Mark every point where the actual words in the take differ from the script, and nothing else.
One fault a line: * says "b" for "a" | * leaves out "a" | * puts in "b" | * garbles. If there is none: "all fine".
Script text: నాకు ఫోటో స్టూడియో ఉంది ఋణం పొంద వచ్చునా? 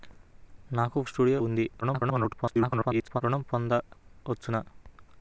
* leaves out "ఫోటో"
* garbles